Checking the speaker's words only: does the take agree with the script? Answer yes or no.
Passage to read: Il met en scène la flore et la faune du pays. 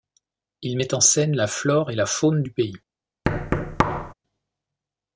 yes